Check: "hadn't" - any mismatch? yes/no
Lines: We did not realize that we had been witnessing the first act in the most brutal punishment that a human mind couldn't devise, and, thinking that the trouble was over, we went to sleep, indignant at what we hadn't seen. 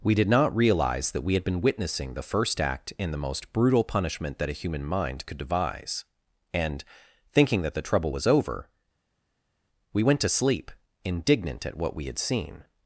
yes